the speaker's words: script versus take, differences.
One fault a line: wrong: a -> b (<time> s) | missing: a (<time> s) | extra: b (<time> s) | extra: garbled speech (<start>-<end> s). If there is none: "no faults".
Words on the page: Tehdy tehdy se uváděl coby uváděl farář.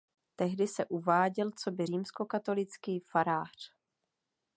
missing: tehdy (0.7 s)
wrong: uváděl -> římskokatolický (1.8 s)